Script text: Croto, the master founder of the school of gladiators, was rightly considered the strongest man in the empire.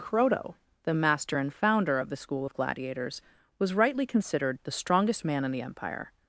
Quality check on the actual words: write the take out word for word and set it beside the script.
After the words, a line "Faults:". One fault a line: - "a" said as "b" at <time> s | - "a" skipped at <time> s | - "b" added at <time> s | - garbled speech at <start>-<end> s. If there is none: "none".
Croto, the master and founder of the school of gladiators, was rightly considered the strongest man in the empire.
Faults:
- "and" added at 1.4 s